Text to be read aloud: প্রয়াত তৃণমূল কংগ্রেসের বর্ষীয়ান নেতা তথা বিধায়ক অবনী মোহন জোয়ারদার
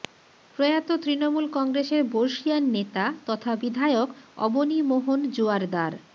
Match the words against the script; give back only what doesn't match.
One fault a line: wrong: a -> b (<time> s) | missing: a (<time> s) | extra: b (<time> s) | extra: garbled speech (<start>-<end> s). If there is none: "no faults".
no faults